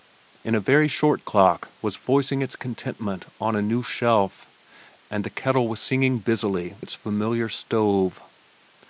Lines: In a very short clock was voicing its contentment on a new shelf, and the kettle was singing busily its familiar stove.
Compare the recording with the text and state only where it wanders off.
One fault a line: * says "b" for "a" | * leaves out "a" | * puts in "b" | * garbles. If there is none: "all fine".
all fine